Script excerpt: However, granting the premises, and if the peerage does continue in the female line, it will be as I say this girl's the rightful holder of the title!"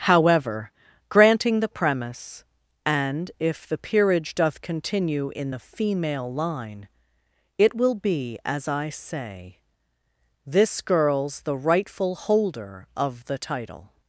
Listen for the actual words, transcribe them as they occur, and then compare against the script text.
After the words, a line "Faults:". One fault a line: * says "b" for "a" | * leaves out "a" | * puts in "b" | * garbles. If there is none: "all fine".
However, granting the premise, and if the peerage doth continue in the female line, it will be as I say this girl's the rightful holder of the title!"
Faults:
* says "premise" for "premises"
* says "doth" for "does"